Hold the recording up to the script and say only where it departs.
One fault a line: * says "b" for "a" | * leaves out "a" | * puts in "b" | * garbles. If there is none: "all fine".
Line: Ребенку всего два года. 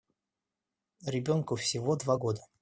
all fine